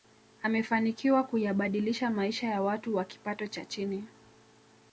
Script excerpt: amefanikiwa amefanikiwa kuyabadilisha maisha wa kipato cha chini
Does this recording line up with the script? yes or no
no